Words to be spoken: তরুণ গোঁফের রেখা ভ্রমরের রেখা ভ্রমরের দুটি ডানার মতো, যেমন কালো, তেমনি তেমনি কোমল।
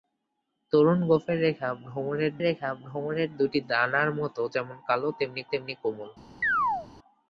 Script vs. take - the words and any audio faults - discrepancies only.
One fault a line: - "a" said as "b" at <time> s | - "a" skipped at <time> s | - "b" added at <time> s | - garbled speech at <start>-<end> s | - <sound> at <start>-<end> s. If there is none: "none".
- chirp at 6.4-6.9 s